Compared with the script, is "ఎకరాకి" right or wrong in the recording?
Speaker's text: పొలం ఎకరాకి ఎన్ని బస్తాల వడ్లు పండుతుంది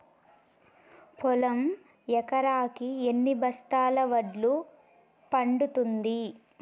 right